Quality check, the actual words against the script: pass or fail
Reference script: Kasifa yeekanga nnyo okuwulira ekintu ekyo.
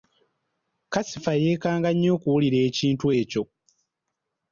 pass